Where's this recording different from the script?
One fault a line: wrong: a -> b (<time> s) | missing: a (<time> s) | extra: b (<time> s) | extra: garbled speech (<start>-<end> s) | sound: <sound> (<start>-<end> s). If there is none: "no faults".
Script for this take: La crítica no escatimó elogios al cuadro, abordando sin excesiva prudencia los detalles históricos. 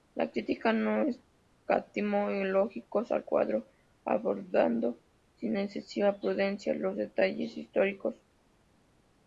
no faults